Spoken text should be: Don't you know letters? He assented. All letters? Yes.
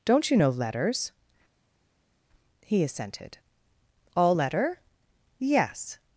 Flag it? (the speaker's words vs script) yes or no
yes